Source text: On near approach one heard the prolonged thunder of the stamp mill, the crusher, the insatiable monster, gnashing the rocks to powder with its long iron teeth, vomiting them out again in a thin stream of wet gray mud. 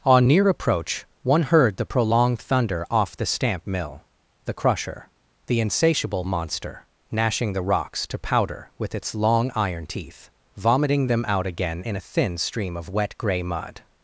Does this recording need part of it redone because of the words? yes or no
yes